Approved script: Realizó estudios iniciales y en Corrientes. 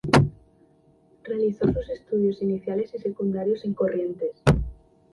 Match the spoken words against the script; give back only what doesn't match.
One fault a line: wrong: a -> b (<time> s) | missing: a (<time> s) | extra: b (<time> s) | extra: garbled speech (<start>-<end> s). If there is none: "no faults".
extra: sus (1.7 s)
extra: secundarios (3.0 s)